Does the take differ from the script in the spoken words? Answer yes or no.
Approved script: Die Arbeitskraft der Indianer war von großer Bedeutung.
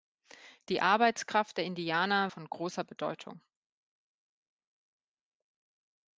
yes